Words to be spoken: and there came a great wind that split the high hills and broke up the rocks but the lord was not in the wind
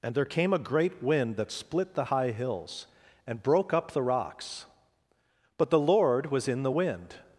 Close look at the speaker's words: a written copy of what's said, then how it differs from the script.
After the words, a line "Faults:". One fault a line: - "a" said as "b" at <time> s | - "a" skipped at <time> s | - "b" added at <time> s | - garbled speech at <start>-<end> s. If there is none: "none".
and there came a great wind that split the high hills and broke up the rocks but the lord was in the wind
Faults:
- "not" skipped at 6.5 s